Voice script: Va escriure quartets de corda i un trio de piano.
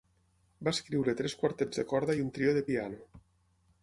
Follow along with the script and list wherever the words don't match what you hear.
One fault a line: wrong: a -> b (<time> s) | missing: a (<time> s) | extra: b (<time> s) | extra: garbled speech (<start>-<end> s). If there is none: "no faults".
extra: tres (1.2 s)